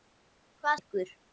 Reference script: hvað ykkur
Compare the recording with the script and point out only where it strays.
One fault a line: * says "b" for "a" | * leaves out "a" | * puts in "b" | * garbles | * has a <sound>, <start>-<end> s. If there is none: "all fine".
all fine